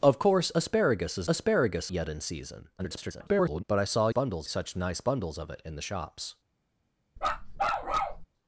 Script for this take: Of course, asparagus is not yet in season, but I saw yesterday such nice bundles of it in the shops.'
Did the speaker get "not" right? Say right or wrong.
wrong